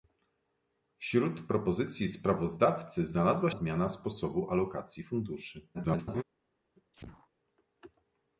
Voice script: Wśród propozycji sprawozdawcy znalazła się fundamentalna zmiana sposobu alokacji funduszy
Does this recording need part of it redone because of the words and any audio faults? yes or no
yes